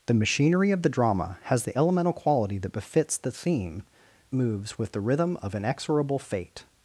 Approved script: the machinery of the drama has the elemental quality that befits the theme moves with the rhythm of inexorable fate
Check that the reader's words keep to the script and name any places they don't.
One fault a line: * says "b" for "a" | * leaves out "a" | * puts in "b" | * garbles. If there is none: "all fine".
all fine